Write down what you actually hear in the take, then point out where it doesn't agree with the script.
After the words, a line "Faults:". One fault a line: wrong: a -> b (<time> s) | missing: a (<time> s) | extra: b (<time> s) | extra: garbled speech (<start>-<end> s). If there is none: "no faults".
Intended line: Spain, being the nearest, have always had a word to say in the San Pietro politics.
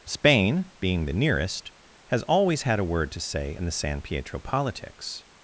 Spain, being the nearest, has always had a word to say in the San Pietro politics.
Faults:
wrong: have -> has (2.1 s)